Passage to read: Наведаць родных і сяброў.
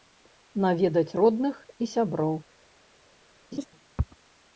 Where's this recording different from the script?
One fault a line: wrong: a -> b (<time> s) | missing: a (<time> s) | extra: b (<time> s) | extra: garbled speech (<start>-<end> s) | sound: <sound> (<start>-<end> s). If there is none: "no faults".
sound: laugh (3.5-3.7 s)